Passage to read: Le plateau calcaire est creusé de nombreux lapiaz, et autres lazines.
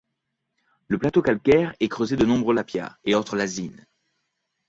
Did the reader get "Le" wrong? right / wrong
right